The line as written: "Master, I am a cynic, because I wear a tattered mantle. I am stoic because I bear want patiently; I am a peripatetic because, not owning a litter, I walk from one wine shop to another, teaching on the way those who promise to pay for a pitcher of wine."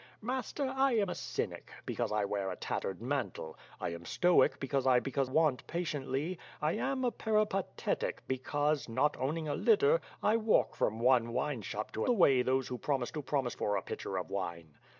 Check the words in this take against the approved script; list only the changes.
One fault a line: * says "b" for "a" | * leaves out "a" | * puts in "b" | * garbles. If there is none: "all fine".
* says "because" for "bear"
* leaves out "another teaching on"
* says "promise" for "pay"